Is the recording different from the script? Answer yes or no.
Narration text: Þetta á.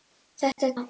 no